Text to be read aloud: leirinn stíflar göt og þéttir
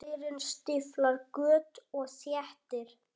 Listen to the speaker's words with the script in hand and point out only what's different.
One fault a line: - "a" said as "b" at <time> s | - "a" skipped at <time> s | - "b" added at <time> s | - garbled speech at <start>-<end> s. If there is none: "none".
none